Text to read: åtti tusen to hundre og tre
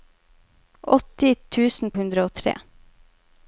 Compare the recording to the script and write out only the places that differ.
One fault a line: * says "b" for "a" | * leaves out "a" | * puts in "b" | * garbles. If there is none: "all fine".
* leaves out "to"